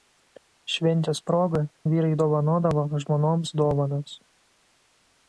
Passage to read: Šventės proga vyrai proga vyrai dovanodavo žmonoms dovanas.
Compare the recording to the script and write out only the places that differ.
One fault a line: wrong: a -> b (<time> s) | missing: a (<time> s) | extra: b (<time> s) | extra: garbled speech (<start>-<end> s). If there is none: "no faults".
missing: proga vyrai (2.1 s)